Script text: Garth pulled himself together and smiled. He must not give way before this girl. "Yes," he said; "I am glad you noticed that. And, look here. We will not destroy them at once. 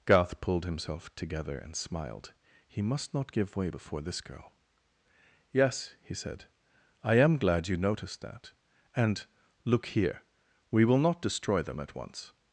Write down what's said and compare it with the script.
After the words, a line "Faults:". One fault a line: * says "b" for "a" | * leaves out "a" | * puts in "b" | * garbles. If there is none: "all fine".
Garth pulled himself together and smiled. He must not give way before this girl. "Yes," he said; "I am glad you noticed that. And, look here. We will not destroy them at once.
Faults:
all fine